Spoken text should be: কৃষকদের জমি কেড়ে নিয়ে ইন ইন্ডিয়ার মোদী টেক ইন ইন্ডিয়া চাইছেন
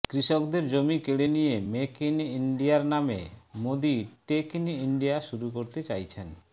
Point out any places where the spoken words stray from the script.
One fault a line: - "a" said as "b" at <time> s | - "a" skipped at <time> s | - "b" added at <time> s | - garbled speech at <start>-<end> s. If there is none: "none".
- "মেক" added at 1.7 s
- "নামে" added at 2.8 s
- "শুরু করতে" added at 5.2 s